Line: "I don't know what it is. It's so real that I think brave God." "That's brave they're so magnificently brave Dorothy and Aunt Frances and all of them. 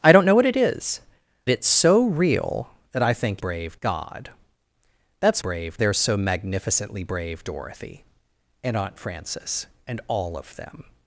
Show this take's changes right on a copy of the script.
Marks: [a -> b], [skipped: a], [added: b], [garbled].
"I don't know what it is. It's so real that I think brave God." "That's brave they're so magnificently brave Dorothy and Aunt Frances and all of them.